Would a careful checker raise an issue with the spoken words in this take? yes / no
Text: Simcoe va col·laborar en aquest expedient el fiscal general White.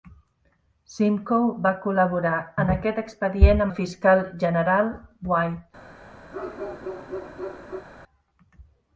no